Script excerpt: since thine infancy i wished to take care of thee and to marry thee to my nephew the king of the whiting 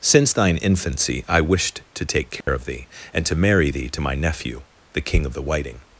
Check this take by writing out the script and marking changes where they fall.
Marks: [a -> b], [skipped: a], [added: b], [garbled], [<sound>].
since thine infancy i wished to take care [dropout] of thee and to marry thee to my nephew the king of the whiting